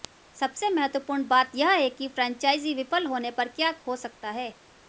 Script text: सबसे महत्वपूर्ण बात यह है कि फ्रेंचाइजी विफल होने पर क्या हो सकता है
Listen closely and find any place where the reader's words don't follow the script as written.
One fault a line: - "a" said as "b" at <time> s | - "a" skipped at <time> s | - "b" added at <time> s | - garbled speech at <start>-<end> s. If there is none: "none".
none